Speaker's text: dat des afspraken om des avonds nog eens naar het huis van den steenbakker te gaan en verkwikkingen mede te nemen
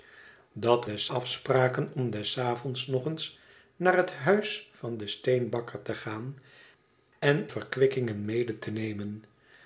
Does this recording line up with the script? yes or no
yes